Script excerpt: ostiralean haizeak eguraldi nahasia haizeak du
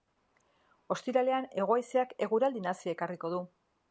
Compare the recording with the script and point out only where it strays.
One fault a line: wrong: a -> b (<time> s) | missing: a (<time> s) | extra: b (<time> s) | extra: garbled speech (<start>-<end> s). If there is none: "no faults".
extra: hego (1.6 s)
wrong: haizeak -> ekarriko (3.0 s)